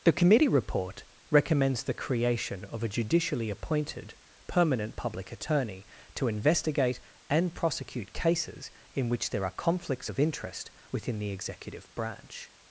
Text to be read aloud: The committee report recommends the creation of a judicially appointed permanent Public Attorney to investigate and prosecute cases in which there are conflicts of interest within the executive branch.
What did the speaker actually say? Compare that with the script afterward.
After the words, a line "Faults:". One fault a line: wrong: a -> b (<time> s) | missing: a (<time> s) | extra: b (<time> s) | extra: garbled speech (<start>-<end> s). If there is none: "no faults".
The committee report recommends the creation of a judicially appointed permanent Public Attorney to investigate and prosecute cases in which there are conflicts of interest within the executive branch.
Faults:
no faults